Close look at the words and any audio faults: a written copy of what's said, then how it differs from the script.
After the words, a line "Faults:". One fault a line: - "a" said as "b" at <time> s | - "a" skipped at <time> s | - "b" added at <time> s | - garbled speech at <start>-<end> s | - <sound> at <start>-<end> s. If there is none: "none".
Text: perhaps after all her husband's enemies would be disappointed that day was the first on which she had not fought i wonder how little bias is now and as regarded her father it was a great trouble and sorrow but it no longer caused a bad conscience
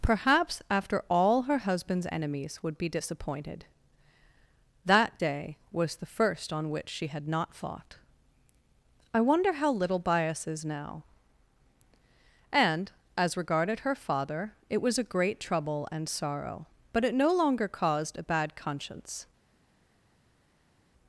perhaps after all her husband's enemies would be disappointed that day was the first on which she had not fought i wonder how little bias is now and as regarded her father it was a great trouble and sorrow but it no longer caused a bad conscience
Faults:
none